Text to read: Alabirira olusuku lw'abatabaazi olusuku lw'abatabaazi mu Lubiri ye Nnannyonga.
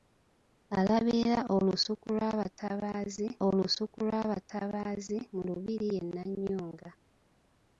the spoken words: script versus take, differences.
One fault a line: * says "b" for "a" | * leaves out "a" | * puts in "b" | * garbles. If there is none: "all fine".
all fine